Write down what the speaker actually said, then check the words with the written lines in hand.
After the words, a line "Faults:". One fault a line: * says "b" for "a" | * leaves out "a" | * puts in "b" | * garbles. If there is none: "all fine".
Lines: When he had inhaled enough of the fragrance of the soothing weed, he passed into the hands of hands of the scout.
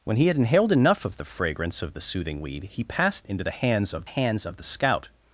When he had inhaled enough of the fragrance of the soothing weed, he passed into the hands of hands of the scout.
Faults:
all fine